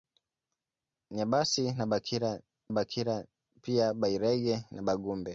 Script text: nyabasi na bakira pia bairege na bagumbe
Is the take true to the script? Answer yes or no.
no